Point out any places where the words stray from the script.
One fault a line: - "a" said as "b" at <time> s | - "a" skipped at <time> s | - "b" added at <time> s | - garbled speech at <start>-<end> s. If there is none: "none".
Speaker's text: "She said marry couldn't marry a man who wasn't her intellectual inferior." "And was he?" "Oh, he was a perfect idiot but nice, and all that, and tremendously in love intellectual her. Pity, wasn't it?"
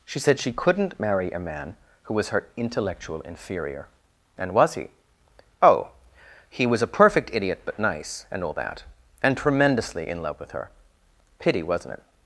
- "marry" said as "she" at 0.4 s
- "wasn't" said as "was" at 2.1 s
- "intellectual" said as "with" at 10.4 s